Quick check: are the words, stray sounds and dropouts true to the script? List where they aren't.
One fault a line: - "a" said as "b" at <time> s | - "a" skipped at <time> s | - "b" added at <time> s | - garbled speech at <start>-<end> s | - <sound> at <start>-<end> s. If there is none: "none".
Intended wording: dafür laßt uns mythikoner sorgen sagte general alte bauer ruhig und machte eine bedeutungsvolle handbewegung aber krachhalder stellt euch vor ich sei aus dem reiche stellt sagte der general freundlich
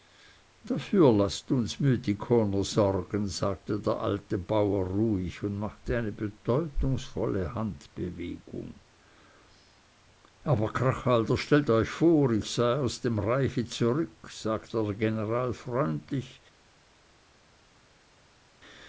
- "general" said as "der" at 3.8 s
- "stellt" said as "zurück" at 13.7 s